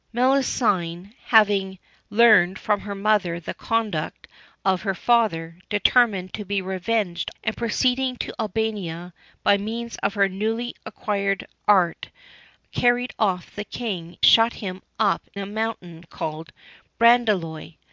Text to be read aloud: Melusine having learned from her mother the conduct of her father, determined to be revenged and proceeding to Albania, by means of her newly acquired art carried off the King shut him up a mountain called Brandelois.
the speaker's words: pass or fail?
pass